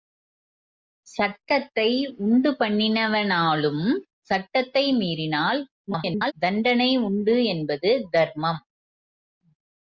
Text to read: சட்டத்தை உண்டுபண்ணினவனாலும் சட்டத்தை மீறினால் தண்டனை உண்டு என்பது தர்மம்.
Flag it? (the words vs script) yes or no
yes